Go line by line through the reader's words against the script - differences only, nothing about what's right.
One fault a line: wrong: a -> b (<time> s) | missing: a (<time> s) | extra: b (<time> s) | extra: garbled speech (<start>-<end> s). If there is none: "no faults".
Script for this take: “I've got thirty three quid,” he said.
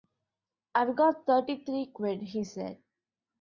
no faults